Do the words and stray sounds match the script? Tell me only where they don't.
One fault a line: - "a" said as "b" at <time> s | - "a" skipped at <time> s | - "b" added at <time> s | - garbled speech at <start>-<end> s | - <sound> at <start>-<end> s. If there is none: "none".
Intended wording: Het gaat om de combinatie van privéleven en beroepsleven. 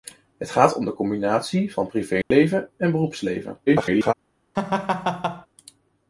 - dropout at 2.2-2.3 s
- garbled speech at 3.7-4.1 s
- laugh at 4.5-5.5 s